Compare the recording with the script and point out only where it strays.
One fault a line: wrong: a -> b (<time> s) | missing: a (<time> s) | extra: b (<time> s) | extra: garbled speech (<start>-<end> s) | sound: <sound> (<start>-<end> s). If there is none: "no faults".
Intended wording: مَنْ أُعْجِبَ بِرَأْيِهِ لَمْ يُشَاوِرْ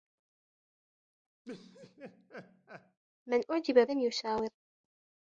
sound: laugh (1.4-3.0 s)
missing: بِرَأْيِهِ (3.9 s)